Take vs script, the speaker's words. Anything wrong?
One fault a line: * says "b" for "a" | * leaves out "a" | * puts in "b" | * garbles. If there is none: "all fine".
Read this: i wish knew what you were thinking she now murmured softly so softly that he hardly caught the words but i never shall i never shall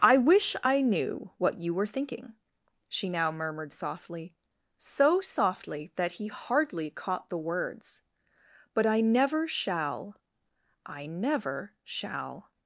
* puts in "i"